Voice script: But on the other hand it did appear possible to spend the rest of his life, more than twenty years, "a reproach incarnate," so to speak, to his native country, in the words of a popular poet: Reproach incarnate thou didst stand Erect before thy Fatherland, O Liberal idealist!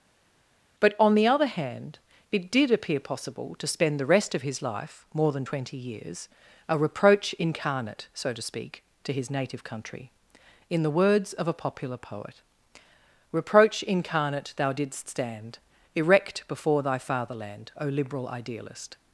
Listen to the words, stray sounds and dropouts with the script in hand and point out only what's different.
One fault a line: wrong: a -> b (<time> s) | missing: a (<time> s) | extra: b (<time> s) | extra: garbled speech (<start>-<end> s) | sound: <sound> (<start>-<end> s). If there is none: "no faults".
no faults